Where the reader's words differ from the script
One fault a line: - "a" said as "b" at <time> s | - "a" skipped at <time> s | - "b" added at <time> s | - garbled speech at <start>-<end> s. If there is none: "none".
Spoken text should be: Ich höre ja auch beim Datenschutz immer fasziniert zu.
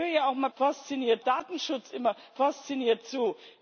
- "beim" said as "fasziniert" at 0.6 s